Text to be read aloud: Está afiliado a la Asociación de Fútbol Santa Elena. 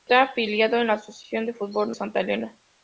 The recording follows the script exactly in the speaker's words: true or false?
true